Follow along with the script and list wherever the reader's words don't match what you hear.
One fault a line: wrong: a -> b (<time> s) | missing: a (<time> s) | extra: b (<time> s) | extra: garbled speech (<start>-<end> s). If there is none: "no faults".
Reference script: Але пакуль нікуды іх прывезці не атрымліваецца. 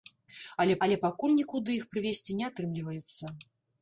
extra: але (0.8 s)